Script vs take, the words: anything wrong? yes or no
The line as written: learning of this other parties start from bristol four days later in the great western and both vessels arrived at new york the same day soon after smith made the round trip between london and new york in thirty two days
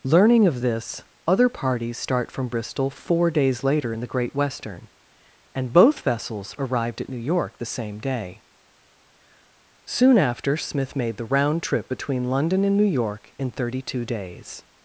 no